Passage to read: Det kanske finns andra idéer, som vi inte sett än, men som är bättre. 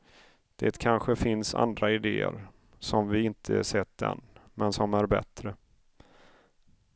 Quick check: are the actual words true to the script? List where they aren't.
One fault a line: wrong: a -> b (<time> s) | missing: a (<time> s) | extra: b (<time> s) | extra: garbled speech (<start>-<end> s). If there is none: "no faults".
no faults